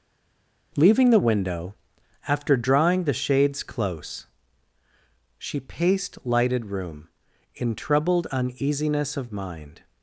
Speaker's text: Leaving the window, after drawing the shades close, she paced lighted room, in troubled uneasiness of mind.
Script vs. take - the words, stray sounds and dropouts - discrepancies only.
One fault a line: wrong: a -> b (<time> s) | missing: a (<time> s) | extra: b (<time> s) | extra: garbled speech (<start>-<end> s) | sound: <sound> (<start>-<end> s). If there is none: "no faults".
no faults